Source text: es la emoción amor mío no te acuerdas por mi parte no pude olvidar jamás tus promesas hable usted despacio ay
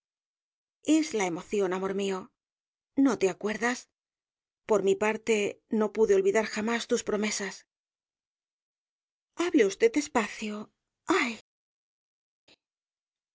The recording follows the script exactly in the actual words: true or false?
true